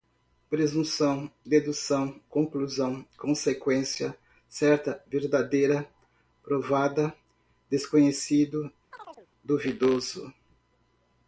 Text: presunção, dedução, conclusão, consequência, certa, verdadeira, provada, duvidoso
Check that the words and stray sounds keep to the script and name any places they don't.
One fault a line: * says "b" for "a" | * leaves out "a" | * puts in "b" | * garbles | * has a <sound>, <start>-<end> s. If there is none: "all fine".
* puts in "desconhecido"
* has a chirp, 8.9-9.3 s